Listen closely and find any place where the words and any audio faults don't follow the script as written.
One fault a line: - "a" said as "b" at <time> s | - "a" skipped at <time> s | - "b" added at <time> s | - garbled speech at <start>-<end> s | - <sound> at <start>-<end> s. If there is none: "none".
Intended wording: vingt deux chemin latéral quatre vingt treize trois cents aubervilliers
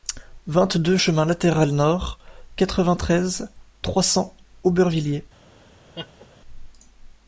- "nord" added at 1.7 s
- laugh at 5.9-6.3 s